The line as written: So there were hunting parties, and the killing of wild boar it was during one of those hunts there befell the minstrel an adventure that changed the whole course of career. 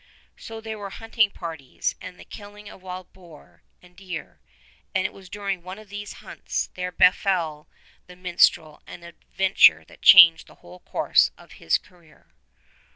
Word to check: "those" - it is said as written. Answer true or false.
false